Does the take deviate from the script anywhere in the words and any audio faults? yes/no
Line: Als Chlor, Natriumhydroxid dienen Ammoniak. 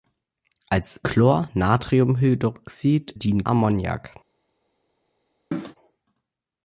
yes